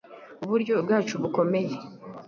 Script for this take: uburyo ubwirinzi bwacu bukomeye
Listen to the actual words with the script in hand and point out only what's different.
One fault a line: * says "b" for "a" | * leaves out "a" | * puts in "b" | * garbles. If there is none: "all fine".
* leaves out "ubwirinzi"